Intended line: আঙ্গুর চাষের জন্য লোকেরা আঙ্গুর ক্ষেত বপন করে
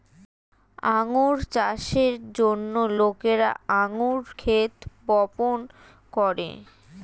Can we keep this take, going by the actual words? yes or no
yes